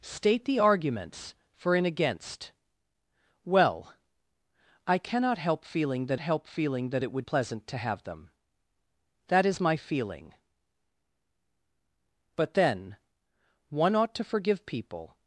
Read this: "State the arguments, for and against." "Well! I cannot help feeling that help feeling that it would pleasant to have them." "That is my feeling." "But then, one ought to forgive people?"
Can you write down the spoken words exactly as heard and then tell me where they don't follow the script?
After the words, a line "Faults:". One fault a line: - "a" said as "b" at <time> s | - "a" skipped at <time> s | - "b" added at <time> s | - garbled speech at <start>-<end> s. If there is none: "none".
"State the arguments, for and against." "Well! I cannot help feeling that help feeling that it would pleasant to have them." "That is my feeling." "But then, one ought to forgive people?"
Faults:
none